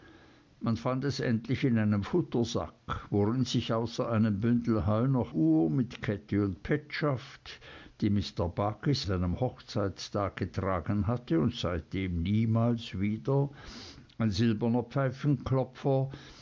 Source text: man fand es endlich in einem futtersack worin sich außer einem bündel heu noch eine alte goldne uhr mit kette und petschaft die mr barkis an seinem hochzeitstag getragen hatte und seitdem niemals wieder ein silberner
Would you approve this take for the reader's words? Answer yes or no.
no